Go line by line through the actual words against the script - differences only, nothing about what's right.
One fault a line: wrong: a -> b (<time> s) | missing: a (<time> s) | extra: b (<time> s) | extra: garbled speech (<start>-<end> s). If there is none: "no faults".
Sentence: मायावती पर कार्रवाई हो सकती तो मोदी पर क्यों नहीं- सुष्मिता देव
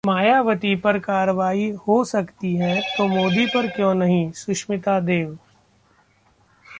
extra: है (2.5 s)